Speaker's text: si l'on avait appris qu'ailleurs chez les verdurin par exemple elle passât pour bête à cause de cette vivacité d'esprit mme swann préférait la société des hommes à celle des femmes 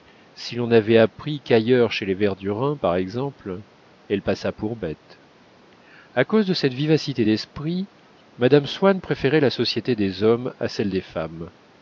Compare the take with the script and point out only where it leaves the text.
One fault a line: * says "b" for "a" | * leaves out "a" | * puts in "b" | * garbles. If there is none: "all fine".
all fine